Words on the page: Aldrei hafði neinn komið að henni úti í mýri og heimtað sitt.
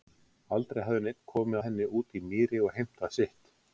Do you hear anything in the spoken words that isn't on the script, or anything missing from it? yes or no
yes